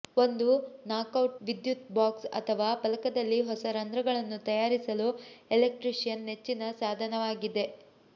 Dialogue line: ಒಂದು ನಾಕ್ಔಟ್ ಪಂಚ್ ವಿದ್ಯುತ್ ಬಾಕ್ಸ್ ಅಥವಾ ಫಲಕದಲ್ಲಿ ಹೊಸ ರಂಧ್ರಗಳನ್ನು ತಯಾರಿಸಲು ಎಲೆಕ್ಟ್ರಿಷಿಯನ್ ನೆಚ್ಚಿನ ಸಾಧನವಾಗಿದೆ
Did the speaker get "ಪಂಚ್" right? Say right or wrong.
wrong